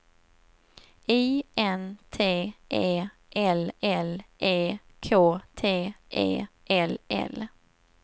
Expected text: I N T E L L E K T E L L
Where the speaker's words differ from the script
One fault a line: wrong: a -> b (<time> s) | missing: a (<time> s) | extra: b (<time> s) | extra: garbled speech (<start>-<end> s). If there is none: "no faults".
no faults